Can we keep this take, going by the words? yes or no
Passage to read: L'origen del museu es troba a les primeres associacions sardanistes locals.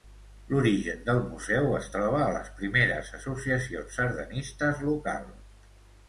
yes